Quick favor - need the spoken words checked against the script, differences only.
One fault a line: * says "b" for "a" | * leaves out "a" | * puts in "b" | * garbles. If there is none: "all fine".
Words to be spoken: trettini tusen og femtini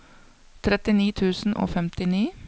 all fine